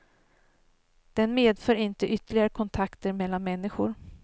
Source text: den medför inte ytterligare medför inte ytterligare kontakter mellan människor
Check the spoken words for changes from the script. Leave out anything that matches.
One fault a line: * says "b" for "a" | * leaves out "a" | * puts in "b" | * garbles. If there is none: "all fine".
* leaves out "medför inte ytterligare"